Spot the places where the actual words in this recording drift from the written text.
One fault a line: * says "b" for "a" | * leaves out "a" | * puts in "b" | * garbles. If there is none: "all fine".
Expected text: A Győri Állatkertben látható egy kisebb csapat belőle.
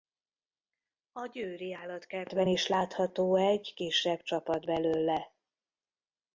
* puts in "is"